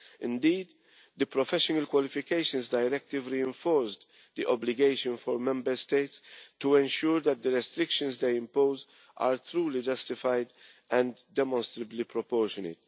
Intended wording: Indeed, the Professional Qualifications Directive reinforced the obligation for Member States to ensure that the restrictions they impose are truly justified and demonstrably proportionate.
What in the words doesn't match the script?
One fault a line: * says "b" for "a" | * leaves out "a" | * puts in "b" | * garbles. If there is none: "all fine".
all fine